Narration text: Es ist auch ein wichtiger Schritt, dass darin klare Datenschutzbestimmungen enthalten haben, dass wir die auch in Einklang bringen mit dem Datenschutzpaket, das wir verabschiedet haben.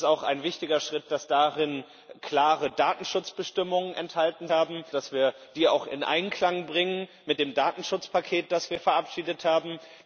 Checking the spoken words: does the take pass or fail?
pass